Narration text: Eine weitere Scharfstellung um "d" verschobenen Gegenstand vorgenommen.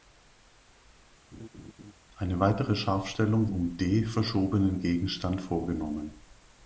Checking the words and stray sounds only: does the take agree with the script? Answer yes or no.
no